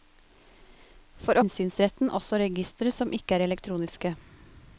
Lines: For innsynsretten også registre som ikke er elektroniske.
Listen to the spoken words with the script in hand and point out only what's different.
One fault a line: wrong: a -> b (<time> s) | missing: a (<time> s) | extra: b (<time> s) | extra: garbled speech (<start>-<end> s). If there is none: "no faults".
no faults